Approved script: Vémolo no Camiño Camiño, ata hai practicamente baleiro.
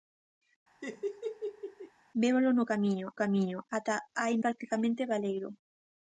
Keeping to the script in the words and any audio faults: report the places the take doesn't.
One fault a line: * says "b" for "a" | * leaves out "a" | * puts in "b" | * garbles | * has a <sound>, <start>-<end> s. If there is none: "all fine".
* has a laugh, 0.8-1.9 s